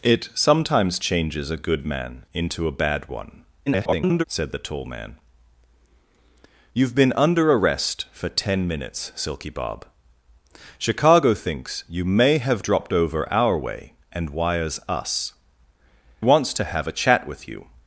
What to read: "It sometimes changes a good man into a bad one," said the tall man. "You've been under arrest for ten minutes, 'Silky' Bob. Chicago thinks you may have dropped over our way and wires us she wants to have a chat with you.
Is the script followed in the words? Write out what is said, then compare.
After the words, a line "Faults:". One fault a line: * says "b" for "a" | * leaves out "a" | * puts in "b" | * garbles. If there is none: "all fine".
"It sometimes changes a good man into a bad one," [garbled] said the tall man. "You've been under arrest for ten minutes, 'Silky' Bob. Chicago thinks you may have dropped over our way and wires us wants to have a chat with you.
Faults:
* garbles
* leaves out "she"